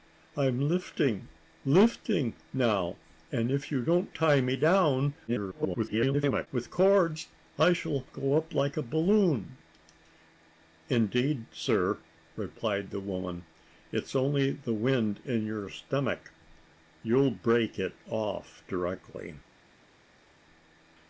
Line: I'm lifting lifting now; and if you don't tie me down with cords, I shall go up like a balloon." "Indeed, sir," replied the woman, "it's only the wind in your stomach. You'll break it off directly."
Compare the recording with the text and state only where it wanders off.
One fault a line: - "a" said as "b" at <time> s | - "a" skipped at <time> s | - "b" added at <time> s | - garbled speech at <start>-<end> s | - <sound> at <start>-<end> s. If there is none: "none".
- garbled speech at 5.3-6.5 s